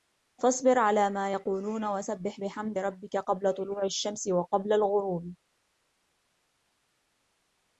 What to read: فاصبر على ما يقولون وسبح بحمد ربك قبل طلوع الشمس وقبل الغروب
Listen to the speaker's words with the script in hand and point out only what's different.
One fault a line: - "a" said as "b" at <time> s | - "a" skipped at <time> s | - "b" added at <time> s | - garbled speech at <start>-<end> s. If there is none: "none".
none